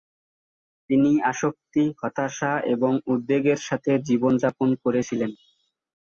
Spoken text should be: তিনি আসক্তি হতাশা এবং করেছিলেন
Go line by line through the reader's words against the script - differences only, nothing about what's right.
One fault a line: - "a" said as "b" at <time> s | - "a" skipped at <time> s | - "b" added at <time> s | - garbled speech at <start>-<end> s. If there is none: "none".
- "উদ্বেগের সাথে জীবনযাপন" added at 3.0 s